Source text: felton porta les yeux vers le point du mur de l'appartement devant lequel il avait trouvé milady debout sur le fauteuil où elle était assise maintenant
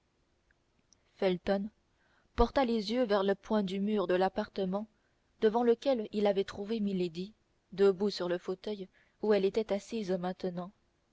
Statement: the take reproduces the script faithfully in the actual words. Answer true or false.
true